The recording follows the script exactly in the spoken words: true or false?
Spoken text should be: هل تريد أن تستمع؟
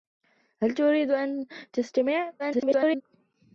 false